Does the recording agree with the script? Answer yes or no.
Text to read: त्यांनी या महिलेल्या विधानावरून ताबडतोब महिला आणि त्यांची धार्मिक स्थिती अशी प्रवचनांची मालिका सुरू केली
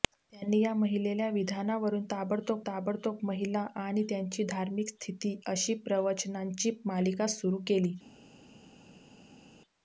no